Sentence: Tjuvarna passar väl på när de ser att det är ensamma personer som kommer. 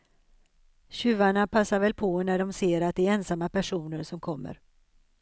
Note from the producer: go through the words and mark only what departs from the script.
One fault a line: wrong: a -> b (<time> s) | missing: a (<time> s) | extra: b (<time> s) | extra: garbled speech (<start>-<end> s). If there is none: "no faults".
no faults